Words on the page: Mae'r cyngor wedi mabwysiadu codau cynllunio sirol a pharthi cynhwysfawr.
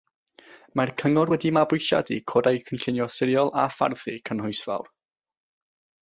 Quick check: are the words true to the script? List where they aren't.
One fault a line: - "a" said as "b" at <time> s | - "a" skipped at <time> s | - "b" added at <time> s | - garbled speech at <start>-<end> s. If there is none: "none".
none